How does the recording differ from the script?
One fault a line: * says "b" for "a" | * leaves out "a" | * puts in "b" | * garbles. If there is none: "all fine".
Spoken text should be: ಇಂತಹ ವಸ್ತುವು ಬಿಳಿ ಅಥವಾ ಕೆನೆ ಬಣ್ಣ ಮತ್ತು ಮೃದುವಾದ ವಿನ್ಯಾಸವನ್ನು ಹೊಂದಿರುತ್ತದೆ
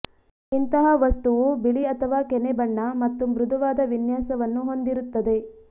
all fine